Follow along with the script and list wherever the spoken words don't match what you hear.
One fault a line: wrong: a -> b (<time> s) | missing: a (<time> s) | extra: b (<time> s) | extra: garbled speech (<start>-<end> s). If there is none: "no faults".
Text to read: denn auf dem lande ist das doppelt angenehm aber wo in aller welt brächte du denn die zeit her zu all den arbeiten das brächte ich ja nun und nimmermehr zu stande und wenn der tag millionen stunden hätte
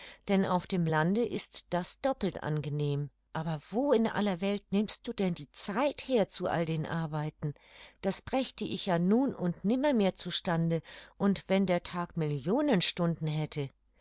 wrong: brächte -> nimmst (4.7 s)